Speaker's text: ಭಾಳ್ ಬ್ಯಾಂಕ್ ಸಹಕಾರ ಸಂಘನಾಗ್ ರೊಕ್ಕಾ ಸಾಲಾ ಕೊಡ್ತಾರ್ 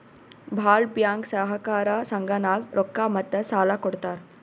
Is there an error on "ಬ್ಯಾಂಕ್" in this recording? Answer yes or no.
no